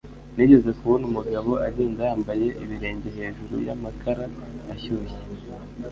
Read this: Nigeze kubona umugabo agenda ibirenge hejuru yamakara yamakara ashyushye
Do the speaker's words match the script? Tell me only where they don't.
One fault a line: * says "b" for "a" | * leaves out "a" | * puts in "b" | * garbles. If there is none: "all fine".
* puts in "yambaye"
* leaves out "yamakara"